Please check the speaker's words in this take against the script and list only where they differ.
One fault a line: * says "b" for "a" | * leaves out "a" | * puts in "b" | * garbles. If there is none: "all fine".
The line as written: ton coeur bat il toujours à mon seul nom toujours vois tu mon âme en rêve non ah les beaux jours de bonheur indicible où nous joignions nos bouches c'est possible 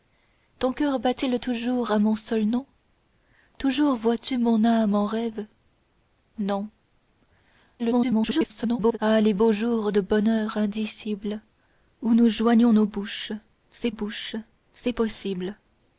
* garbles
* puts in "bouches c'est"